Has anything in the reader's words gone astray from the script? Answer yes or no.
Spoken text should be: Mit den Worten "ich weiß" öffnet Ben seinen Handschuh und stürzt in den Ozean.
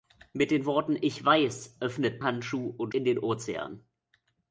yes